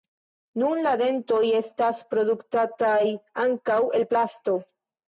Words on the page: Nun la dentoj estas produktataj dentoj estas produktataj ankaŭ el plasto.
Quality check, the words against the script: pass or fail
fail